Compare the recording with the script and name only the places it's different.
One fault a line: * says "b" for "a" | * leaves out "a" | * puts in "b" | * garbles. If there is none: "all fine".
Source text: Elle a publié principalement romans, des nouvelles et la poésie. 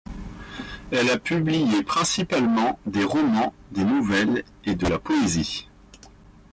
* puts in "des"
* puts in "de"